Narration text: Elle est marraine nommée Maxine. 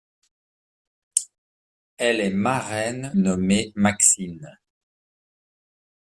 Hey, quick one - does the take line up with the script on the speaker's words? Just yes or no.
yes